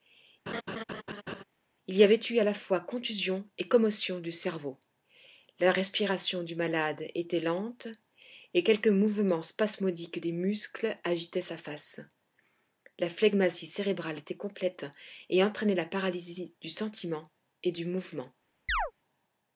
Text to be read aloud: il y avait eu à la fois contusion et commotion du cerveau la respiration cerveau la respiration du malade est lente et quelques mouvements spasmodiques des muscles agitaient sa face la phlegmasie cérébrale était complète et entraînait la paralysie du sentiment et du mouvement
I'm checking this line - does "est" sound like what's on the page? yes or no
no